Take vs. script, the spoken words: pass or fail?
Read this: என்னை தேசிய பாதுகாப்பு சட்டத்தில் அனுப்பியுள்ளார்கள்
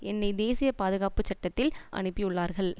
pass